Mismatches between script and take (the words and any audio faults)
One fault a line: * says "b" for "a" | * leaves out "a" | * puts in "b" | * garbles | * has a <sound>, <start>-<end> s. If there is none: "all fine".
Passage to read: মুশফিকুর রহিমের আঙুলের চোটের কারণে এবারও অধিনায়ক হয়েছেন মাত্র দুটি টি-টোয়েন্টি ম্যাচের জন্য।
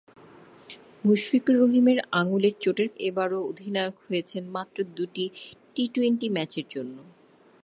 * leaves out "কারণে"